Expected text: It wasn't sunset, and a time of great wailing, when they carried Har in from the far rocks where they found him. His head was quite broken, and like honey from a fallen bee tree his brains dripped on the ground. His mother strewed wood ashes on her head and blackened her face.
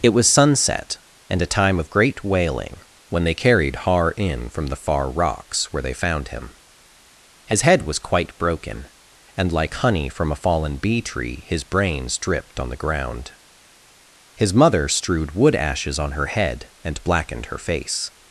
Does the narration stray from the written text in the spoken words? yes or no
yes